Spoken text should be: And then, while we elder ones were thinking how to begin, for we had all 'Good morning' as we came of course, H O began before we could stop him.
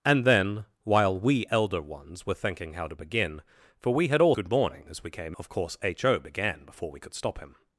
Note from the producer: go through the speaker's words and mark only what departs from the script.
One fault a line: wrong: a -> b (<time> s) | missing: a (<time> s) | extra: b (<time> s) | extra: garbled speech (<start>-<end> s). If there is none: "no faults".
no faults